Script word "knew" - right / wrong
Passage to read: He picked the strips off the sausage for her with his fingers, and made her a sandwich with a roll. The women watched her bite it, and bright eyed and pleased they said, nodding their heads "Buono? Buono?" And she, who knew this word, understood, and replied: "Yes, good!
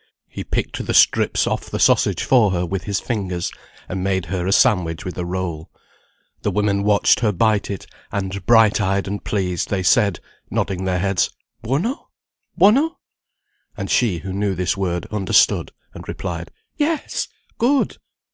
right